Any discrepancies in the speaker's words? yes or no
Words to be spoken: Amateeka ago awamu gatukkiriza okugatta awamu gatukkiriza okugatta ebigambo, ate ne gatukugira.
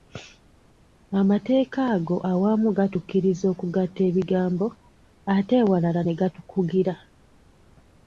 yes